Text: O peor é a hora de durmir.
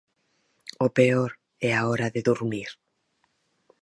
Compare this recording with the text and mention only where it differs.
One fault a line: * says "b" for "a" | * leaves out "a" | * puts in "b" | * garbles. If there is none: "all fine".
all fine